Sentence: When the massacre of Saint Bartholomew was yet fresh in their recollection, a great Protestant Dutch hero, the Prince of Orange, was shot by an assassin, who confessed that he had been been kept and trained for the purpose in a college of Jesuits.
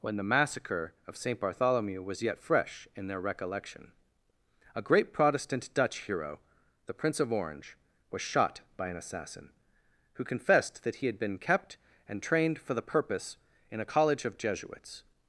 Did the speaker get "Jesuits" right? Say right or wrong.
right